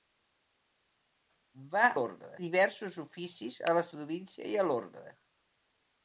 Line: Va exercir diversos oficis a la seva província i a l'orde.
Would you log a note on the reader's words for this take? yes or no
yes